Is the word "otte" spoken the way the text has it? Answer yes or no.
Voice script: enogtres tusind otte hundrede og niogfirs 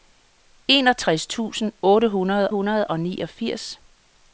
yes